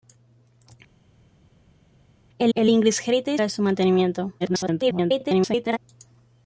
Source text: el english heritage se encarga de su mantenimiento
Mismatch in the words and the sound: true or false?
true